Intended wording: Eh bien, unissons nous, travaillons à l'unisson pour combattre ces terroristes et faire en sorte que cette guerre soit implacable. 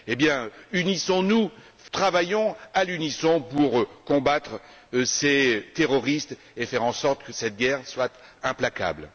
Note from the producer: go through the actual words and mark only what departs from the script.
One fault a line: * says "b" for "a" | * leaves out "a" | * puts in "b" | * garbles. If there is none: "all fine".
all fine